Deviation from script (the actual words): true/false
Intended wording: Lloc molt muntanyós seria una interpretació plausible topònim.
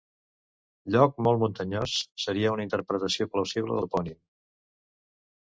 false